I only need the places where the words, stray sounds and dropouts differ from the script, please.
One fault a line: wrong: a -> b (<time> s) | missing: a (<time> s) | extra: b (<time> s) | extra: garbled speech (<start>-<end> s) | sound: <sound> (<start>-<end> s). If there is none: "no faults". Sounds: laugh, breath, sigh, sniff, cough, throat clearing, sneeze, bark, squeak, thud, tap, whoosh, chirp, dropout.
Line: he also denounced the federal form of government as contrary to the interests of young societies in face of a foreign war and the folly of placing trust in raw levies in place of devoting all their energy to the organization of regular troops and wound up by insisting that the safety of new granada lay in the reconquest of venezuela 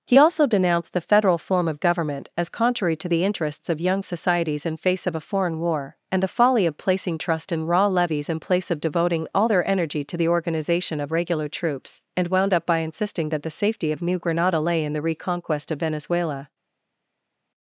no faults